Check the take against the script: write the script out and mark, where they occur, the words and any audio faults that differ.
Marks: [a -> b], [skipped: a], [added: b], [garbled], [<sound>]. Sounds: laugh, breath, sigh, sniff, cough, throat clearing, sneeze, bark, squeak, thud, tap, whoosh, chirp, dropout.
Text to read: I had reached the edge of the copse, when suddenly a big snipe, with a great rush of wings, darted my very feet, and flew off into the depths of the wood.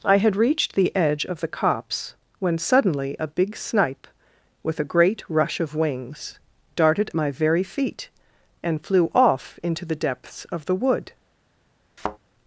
I had reached the edge of the copse, when suddenly a big snipe, with a great rush of wings, darted my very feet, and flew off into the depths of the wood. [thud]